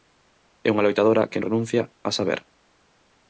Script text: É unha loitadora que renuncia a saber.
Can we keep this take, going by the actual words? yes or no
yes